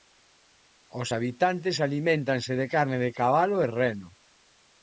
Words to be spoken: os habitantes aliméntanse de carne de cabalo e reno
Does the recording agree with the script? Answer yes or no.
yes